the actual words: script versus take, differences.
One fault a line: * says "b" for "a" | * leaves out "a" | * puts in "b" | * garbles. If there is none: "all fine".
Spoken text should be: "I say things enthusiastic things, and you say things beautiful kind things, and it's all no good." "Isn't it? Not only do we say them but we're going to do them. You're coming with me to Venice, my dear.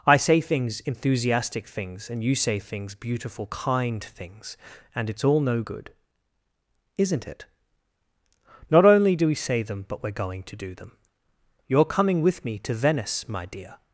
all fine